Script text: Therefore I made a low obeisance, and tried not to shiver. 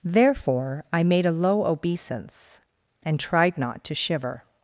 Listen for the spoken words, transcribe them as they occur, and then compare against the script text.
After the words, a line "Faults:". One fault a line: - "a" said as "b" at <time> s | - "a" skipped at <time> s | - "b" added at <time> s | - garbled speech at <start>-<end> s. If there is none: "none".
Therefore I made a low obeisance, and tried not to shiver.
Faults:
none